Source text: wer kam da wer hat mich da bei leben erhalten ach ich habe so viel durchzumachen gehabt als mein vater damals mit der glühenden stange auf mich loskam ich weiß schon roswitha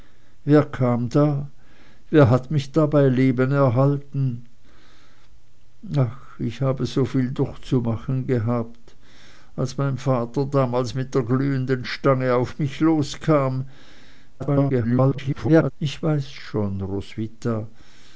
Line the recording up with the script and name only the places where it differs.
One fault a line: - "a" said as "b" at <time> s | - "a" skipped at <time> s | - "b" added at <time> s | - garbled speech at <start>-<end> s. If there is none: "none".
- garbled speech at 14.4-15.7 s